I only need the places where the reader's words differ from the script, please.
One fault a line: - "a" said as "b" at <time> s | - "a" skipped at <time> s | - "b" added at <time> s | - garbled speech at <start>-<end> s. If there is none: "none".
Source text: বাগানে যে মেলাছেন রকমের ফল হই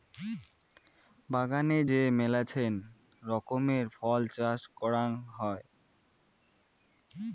- "চাষ করাং" added at 4.3 s